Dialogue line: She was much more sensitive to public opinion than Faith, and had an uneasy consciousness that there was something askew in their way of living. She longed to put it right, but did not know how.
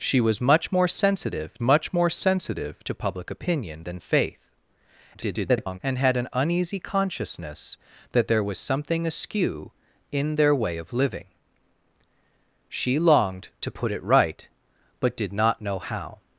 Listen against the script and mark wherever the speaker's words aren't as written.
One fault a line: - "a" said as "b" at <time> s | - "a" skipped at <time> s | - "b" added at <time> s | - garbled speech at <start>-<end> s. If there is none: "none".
- "much more sensitive" added at 1.6 s
- garbled speech at 5.1-5.8 s